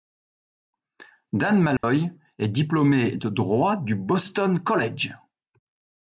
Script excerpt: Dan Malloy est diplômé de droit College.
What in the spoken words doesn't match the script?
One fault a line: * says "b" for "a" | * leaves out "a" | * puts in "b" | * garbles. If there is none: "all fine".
* puts in "du Boston"